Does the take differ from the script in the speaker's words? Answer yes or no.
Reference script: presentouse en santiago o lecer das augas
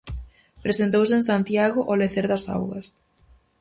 no